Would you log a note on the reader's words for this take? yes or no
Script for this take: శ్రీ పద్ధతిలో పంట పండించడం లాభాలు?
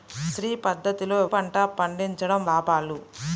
no